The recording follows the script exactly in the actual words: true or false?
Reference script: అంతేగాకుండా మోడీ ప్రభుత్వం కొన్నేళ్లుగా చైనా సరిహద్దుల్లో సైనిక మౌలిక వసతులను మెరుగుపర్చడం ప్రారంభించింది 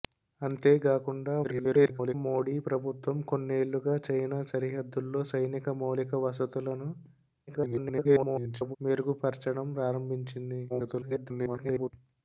false